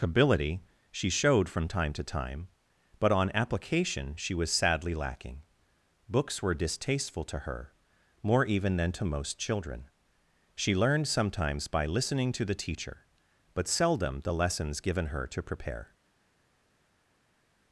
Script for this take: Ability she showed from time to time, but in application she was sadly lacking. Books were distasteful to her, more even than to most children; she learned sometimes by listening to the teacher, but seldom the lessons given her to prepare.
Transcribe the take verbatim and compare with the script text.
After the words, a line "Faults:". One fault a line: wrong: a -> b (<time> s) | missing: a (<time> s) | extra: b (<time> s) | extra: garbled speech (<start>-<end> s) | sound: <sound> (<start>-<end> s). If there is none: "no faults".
Ability she showed from time to time, but on application she was sadly lacking. Books were distasteful to her, more even than to most children; she learned sometimes by listening to the teacher, but seldom the lessons given her to prepare.
Faults:
wrong: in -> on (3.1 s)